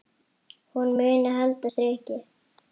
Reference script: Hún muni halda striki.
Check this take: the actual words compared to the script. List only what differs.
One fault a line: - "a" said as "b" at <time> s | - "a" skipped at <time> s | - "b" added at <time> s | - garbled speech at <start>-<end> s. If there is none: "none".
none